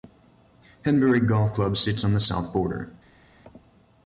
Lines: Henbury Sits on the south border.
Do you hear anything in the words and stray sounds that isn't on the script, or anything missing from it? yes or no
yes